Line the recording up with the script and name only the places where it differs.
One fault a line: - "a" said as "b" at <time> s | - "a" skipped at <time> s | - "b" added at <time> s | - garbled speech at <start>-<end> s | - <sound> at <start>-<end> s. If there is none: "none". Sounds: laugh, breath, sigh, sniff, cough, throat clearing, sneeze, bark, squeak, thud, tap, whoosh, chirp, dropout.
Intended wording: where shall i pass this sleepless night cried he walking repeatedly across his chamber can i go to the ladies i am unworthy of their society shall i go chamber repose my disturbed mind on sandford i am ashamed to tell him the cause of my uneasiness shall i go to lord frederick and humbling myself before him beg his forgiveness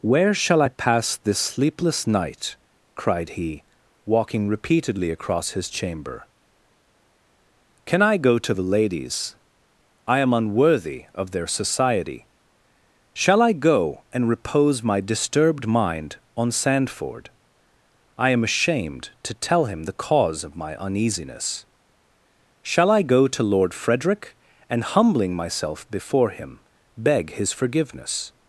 - "chamber" said as "and" at 14.1 s